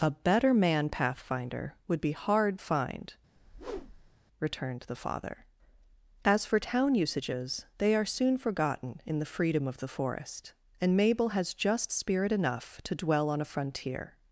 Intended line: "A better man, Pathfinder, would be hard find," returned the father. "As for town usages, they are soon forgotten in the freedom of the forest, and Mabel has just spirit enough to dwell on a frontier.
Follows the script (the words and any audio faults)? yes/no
no